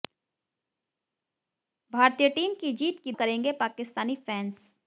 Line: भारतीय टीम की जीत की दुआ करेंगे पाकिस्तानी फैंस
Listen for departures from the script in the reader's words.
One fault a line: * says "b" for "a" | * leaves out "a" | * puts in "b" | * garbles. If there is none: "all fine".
* leaves out "दुआ"